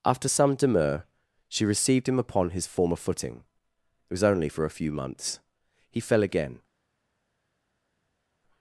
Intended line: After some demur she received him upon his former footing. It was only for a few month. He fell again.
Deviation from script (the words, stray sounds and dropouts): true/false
true